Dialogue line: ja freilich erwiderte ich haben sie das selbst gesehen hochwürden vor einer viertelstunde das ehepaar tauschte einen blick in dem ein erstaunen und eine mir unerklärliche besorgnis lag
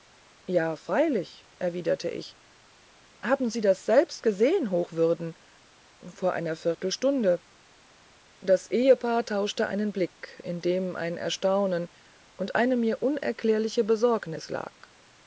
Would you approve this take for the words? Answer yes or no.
yes